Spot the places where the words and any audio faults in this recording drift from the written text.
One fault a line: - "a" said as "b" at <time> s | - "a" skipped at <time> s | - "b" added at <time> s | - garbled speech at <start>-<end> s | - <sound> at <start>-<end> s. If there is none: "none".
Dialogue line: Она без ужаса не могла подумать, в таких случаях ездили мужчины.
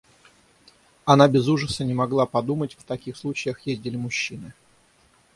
none